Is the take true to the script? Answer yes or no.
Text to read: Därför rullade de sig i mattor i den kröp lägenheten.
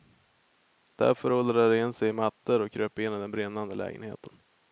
no